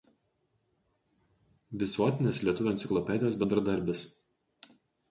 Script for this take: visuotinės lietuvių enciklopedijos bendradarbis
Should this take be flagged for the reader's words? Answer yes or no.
no